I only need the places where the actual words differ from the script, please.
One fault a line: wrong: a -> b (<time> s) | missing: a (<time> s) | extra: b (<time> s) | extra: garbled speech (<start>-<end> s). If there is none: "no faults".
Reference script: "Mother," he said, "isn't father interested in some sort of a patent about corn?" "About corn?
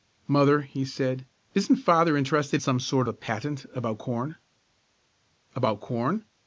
missing: in (2.6 s)
missing: of (3.1 s)